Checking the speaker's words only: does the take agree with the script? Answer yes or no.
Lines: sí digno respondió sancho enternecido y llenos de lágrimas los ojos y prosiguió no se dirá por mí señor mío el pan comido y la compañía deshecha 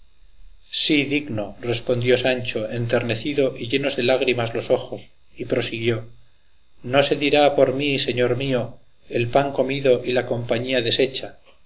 yes